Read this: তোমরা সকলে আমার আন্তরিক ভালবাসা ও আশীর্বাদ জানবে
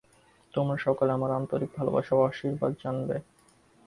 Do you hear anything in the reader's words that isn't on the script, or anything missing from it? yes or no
no